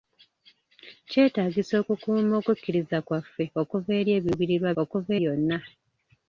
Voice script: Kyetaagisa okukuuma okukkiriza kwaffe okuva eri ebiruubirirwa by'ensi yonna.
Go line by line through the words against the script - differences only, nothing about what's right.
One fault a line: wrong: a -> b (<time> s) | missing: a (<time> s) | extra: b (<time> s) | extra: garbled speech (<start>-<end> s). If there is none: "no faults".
wrong: by'ensi -> okuva (4.8 s)